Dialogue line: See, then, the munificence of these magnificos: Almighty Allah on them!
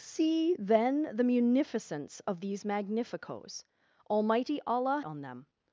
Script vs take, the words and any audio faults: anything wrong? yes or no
no